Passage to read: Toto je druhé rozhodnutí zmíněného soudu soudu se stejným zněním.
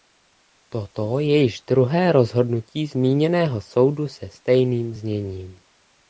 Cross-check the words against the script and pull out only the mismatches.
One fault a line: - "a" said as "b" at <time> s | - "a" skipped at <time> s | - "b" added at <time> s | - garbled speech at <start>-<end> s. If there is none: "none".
- "již" added at 1.4 s
- "soudu" skipped at 4.1 s